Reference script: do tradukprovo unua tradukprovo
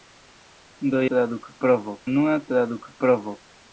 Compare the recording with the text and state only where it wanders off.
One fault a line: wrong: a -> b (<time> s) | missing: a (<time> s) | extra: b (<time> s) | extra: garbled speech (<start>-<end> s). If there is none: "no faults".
no faults